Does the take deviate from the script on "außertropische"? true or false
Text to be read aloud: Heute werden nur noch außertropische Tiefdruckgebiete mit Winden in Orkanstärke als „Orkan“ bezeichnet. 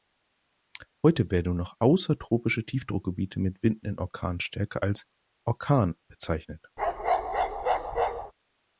false